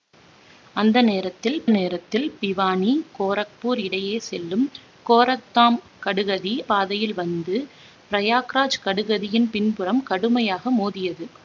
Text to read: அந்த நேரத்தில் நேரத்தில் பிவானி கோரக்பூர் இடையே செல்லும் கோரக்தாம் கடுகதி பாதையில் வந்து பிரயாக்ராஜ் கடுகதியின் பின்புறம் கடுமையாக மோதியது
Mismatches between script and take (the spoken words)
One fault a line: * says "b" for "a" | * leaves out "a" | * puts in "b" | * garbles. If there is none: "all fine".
all fine